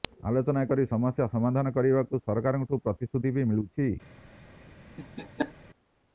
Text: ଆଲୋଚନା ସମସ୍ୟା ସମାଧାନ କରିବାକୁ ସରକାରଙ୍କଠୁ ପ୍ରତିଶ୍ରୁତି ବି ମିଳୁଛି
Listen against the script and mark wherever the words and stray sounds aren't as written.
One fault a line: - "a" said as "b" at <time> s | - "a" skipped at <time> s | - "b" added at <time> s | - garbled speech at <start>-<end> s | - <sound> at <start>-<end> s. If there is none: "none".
- "କରି" added at 0.7 s
- laugh at 5.0-5.5 s